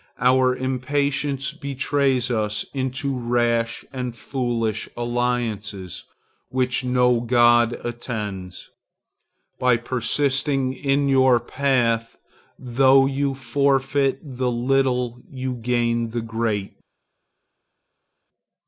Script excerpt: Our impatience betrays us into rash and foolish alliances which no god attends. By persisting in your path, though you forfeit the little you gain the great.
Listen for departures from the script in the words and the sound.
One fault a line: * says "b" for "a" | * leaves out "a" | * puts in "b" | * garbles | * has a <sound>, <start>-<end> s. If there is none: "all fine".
all fine